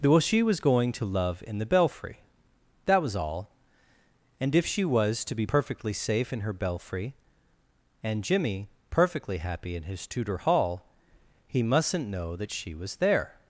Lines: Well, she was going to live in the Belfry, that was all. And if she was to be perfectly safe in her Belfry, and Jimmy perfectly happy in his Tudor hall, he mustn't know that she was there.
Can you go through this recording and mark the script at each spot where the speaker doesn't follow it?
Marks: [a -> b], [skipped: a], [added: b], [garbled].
Well, she was going to [live -> love] in the Belfry, that was all. And if she was to be perfectly safe in her Belfry, and Jimmy perfectly happy in his Tudor hall, he mustn't know that she was there.